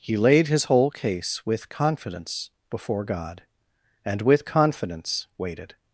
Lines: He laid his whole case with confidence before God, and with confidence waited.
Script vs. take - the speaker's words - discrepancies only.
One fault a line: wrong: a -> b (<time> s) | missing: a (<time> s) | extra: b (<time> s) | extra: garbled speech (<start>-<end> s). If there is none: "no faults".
no faults